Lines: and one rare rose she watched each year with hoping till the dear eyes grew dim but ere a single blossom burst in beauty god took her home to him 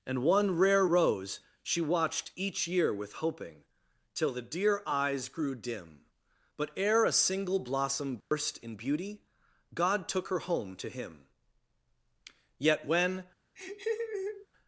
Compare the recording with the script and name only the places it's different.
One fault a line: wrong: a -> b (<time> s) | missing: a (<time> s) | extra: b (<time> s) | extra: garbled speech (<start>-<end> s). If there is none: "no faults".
extra: yet when (12.6 s)